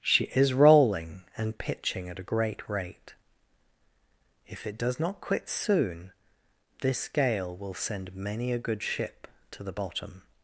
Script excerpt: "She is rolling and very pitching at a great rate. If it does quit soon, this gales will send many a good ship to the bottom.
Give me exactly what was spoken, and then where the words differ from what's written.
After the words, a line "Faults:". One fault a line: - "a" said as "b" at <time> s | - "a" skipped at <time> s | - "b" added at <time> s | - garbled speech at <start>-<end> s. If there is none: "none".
"She is rolling and pitching at a great rate. If it does not quit soon, this gale will send many a good ship to the bottom.
Faults:
- "very" skipped at 1.6 s
- "not" added at 5.0 s
- "gales" said as "gale" at 7.1 s